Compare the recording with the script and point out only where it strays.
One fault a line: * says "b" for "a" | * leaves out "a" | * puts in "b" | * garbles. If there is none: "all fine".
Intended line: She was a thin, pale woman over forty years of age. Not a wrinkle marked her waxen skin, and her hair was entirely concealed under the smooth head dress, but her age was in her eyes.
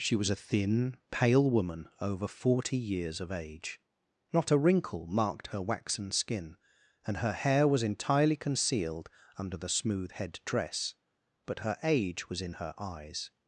all fine